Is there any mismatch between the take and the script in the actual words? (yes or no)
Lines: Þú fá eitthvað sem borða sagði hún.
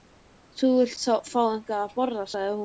yes